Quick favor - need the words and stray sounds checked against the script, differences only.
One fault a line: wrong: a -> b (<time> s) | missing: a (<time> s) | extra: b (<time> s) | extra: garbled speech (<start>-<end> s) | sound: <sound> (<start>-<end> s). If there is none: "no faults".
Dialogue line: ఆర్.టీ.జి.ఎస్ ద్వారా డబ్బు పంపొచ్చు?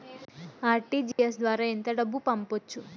sound: dropout (1.1-1.2 s)
extra: ఎంత (1.6 s)